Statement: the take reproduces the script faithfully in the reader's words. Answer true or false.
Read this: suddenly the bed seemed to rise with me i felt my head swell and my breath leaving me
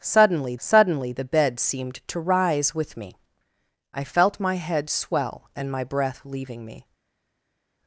false